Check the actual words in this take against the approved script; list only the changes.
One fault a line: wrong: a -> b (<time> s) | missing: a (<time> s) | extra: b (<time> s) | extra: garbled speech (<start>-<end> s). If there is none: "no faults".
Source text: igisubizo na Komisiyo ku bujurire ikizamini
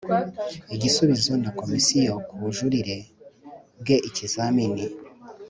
extra: bwe (3.8 s)